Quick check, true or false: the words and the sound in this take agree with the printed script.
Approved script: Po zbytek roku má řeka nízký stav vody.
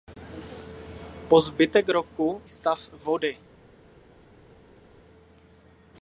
false